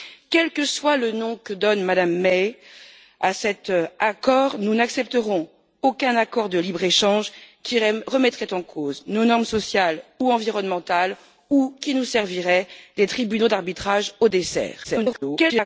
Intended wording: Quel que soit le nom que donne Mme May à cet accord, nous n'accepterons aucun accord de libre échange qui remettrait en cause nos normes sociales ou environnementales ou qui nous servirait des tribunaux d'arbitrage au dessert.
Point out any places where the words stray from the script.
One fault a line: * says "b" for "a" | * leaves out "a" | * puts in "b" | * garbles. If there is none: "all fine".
* garbles